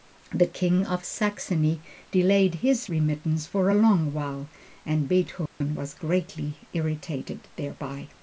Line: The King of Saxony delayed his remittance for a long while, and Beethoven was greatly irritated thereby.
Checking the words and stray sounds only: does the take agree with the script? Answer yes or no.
no